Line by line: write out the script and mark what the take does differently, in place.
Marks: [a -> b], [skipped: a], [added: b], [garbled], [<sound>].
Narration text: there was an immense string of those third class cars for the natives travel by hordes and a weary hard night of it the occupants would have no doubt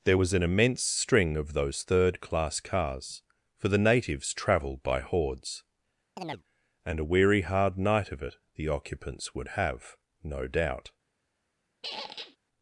there was an immense string of those third class cars for the natives [travel -> travelled] by hordes [chirp] and a weary hard night of it the occupants would have no doubt [squeak]